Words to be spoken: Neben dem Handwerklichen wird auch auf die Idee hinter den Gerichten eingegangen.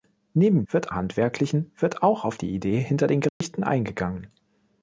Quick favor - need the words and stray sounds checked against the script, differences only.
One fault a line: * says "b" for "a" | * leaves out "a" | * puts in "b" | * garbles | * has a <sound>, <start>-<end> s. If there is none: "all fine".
* says "wird" for "dem"
* has a dropout, 3.3-3.4 s